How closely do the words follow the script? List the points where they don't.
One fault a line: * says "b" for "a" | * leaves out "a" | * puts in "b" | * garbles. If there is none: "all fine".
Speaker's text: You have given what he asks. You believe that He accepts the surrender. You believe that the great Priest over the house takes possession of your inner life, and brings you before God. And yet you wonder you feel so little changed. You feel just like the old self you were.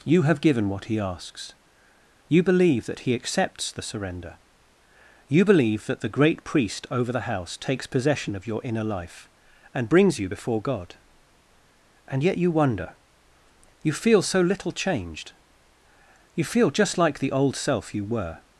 all fine